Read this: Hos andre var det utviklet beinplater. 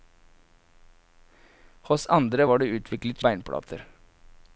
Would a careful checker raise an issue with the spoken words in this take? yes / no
no